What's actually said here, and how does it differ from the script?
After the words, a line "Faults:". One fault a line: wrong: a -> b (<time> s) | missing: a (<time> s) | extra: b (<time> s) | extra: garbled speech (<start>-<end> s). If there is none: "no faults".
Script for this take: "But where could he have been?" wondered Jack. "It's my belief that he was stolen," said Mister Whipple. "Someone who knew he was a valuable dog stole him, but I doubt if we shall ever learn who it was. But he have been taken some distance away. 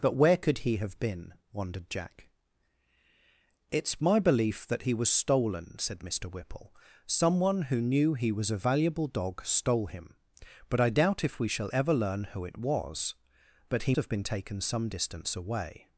"But where could he have been?" wondered Jack. "It's my belief that he was stolen," said Mister Whipple. "Someone who knew he was a valuable dog stole him, but I doubt if we shall ever learn who it was. But he have been taken some distance away.
Faults:
no faults